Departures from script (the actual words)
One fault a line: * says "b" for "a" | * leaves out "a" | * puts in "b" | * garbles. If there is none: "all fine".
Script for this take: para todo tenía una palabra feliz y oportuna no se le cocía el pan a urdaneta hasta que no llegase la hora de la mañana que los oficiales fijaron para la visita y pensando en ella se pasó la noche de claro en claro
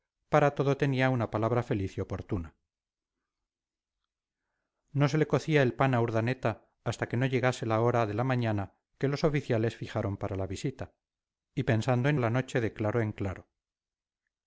* leaves out "ella se pasó"